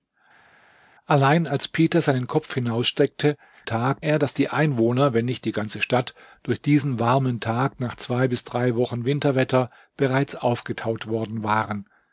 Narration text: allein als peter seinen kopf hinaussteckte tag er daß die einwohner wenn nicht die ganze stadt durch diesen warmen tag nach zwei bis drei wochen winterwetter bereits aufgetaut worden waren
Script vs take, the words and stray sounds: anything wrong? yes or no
no